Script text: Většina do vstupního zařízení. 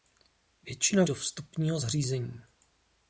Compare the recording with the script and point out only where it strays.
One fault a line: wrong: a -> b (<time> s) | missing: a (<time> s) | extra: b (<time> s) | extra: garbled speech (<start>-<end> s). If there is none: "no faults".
no faults